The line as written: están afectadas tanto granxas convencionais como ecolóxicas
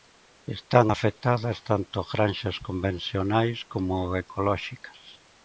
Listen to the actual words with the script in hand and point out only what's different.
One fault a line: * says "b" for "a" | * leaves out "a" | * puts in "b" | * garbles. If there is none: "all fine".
all fine